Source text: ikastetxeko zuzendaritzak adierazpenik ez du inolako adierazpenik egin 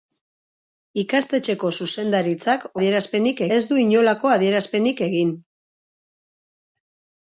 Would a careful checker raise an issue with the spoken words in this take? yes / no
no